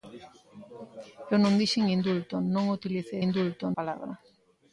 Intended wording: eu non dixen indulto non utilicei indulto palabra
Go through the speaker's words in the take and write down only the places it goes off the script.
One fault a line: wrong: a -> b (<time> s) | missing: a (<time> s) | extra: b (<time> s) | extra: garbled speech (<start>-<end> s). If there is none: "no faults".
no faults